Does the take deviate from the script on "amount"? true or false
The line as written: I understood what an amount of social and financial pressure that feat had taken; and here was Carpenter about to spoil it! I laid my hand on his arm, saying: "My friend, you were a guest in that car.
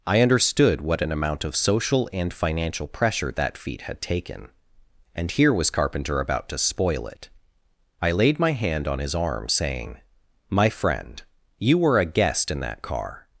false